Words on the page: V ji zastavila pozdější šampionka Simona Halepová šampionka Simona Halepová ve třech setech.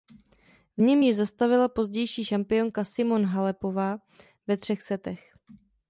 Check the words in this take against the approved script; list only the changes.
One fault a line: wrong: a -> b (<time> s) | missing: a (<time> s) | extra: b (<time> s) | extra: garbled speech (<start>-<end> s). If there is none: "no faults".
extra: něm (0.8 s)
missing: šampionka Simona Halepová (4.0 s)